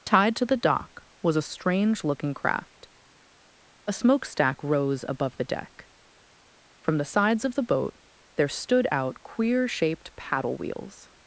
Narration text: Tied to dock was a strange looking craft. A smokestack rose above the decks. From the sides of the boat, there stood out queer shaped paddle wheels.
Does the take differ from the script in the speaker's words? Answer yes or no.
yes